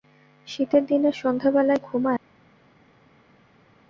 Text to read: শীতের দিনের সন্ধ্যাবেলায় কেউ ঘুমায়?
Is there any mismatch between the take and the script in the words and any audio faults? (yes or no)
yes